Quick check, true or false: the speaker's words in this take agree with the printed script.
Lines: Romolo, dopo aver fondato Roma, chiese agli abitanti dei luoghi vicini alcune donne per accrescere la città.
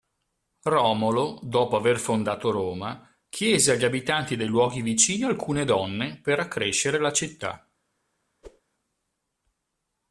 true